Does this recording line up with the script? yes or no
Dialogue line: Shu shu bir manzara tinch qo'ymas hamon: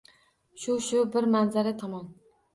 no